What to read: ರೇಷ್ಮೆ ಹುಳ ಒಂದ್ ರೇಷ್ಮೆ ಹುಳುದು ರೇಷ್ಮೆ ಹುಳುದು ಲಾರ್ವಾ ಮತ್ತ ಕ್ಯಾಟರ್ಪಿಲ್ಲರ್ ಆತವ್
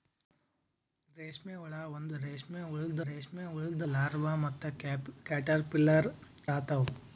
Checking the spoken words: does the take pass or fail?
pass